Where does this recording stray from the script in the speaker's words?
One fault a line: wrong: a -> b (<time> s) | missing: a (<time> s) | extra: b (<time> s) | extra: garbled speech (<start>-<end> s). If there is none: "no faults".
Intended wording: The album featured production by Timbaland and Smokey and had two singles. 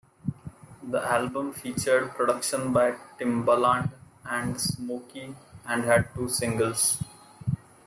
no faults